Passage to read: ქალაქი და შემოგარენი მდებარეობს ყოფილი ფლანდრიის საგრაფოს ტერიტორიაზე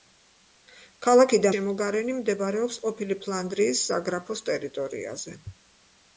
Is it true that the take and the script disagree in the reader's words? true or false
false